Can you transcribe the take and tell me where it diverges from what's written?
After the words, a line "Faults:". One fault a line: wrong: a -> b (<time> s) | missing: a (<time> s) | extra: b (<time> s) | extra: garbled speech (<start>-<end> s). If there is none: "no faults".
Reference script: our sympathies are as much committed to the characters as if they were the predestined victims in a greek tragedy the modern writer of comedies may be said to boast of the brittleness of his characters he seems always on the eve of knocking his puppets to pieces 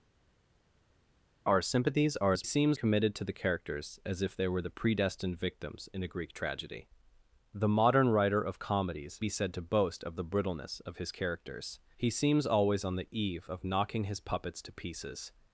our sympathies are as seems committed to the characters as if they were the predestined victims in a greek tragedy the modern writer of comedies be said to boast of the brittleness of his characters he seems always on the eve of knocking his puppets to pieces
Faults:
wrong: much -> seems (2.4 s)
missing: may (9.2 s)